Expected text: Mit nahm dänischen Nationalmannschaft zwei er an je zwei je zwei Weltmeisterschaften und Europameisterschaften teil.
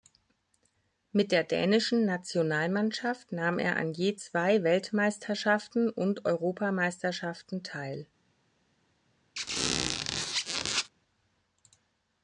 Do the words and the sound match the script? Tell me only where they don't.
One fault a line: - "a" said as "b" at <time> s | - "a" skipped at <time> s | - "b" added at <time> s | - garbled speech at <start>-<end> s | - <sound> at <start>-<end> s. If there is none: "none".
- "nahm" said as "der" at 1.3 s
- "zwei" said as "nahm" at 3.3 s
- "je zwei" skipped at 4.6 s
- squeak at 9.4-10.9 s